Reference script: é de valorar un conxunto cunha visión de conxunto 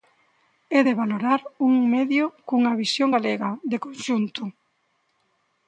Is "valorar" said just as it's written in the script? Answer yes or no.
yes